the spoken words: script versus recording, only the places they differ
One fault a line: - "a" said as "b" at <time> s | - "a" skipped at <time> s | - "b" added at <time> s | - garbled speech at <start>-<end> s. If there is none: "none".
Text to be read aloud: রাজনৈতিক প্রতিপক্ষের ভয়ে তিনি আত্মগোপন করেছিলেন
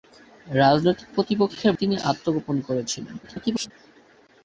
- "ভয়ে" skipped at 1.7 s
- garbled speech at 3.2-3.7 s